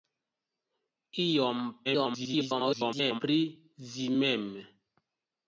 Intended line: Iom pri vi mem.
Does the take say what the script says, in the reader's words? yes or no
no